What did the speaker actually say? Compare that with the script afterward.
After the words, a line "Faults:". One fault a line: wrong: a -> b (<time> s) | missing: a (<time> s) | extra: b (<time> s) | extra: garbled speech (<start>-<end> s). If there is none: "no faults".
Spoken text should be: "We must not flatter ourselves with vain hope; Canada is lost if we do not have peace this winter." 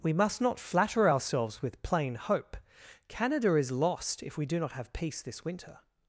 "We must not flatter ourselves with plain hope; Canada is lost if we do not have peace this winter."
Faults:
wrong: vain -> plain (1.8 s)